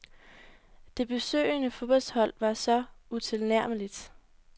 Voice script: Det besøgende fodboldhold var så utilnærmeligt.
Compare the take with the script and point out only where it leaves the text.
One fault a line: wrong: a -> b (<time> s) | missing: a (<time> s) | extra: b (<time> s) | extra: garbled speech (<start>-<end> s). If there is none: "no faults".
no faults